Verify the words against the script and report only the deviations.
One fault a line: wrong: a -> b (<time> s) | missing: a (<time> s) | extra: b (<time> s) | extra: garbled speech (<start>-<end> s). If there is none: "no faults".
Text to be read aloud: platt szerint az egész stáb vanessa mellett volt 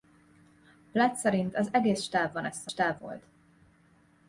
wrong: mellett -> stáb (2.7 s)